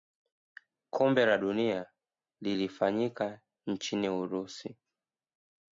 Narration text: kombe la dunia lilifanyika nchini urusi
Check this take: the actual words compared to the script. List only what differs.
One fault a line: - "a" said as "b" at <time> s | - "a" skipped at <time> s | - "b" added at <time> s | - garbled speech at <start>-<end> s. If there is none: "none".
none